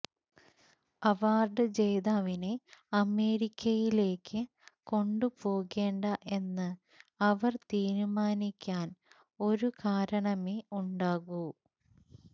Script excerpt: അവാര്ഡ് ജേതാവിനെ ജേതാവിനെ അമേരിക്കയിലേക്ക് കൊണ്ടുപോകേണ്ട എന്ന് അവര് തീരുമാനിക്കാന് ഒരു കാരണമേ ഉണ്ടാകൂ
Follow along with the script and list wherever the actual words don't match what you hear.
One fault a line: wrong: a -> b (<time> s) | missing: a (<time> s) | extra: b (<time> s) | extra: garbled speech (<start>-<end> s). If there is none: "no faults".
missing: ജേതാവിനെ (2.5 s)